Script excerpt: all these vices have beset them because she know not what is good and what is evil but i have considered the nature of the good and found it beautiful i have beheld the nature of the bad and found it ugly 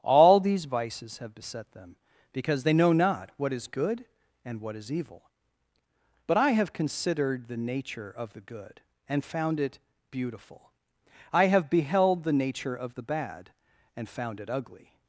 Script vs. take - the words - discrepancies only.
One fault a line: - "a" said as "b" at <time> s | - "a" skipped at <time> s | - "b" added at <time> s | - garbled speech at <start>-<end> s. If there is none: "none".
- "she" said as "they" at 2.6 s